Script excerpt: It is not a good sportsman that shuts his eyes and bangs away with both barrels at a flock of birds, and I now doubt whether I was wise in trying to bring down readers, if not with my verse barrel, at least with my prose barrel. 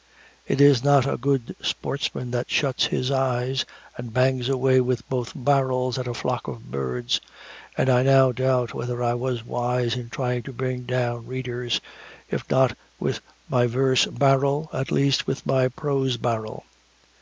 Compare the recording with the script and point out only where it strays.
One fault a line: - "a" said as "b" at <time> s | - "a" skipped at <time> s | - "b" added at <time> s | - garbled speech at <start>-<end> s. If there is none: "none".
none